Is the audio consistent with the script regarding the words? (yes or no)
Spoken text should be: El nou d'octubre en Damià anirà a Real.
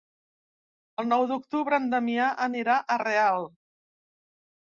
yes